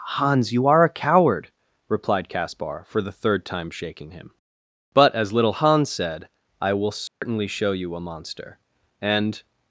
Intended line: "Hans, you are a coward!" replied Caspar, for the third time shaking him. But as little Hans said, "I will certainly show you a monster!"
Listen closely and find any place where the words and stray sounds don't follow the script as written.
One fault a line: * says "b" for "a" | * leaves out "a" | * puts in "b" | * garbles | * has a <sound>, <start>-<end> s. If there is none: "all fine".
* has a dropout, 7.1-7.2 s
* puts in "and"